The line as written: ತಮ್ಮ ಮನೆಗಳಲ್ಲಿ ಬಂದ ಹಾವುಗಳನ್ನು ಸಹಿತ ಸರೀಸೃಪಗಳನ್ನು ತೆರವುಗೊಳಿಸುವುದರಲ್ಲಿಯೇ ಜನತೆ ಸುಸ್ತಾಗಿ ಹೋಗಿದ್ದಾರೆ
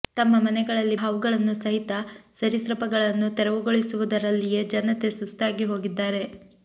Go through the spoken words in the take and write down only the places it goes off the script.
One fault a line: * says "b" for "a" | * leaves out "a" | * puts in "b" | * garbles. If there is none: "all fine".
* leaves out "ಬಂದ"